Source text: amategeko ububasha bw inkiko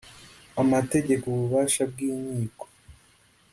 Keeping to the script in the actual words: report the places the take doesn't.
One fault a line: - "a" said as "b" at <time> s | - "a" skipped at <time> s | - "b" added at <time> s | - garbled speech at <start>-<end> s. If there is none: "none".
none